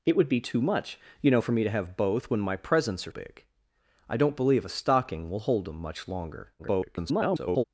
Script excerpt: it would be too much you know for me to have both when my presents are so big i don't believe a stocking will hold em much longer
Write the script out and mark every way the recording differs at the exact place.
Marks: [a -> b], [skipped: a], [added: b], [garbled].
it would be too much you know for me to have both when my presents are [skipped: so] big i don't believe a stocking will hold em much longer [garbled]